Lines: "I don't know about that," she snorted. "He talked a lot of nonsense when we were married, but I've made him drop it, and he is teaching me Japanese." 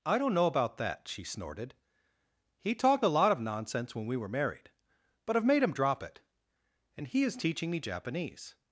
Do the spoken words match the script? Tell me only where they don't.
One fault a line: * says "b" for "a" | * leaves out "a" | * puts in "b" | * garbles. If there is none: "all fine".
all fine